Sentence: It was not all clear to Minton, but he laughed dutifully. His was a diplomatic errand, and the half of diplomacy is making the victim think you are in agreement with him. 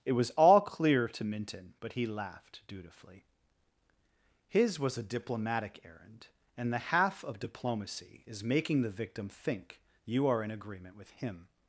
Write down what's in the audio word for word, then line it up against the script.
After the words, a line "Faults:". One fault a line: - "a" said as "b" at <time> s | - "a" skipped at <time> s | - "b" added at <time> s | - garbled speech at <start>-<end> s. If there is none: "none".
It was all clear to Minton, but he laughed dutifully. His was a diplomatic errand, and the half of diplomacy is making the victim think you are in agreement with him.
Faults:
- "not" skipped at 0.3 s